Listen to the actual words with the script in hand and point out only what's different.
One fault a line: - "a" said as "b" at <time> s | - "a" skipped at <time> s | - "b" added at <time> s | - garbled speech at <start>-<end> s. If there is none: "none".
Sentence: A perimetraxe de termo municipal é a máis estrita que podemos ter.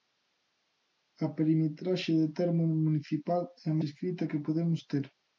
- "máis" skipped at 3.8 s